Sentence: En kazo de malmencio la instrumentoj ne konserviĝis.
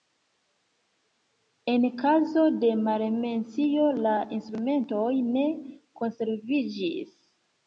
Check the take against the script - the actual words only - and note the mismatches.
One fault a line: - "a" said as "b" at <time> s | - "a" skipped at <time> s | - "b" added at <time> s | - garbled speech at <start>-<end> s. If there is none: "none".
none